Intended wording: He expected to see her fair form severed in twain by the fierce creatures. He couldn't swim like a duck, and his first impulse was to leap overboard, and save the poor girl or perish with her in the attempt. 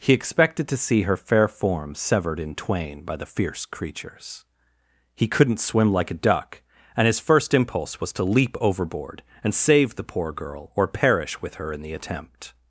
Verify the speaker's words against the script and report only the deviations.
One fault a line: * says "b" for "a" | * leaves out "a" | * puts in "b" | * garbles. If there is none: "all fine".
all fine